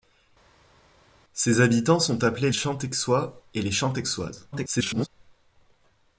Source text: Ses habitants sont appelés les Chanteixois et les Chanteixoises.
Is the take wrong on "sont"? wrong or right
right